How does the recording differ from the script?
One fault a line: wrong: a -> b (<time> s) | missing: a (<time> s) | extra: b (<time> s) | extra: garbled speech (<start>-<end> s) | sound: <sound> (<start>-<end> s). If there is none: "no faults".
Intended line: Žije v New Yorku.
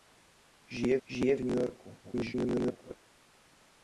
extra: žije (1.1 s)
extra: garbled speech (2.0-2.9 s)